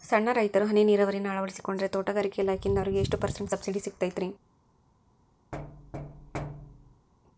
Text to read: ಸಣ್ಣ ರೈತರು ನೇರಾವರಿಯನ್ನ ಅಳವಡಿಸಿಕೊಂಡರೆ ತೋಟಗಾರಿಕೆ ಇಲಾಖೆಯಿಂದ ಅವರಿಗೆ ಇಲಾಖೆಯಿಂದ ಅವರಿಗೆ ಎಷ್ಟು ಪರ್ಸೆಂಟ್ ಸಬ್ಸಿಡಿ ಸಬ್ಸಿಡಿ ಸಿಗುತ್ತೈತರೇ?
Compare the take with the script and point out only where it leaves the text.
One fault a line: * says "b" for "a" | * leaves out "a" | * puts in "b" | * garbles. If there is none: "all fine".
* puts in "ಹನಿ"
* leaves out "ಇಲಾಖೆಯಿಂದ ಅವರಿಗೆ"
* leaves out "ಸಬ್ಸಿಡಿ"